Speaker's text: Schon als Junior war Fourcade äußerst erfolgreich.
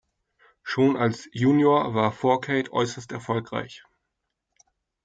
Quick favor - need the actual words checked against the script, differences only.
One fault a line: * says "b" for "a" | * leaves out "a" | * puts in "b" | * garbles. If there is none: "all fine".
all fine